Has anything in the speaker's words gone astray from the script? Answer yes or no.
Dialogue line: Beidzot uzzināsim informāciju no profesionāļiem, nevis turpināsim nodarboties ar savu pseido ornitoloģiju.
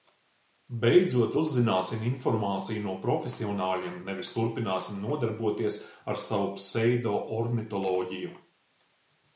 no